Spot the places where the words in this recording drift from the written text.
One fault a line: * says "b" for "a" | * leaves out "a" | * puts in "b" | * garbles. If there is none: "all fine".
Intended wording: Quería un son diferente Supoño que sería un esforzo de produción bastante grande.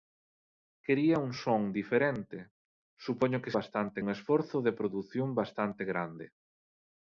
* says "bastante" for "sería"